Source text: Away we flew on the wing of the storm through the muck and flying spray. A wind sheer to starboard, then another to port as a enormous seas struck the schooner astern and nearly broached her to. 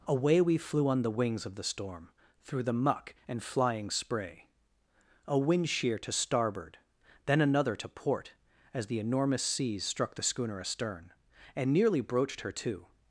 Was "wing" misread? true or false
true